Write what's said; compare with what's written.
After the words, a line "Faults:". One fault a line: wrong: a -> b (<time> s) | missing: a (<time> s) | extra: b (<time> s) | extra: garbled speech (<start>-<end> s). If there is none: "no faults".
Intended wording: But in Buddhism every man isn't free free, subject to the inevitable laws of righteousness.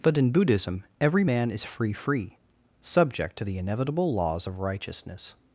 But in Buddhism every man is free free, subject to the inevitable laws of righteousness.
Faults:
wrong: isn't -> is (1.5 s)